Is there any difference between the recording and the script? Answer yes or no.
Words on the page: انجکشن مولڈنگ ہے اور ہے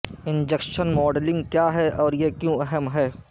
yes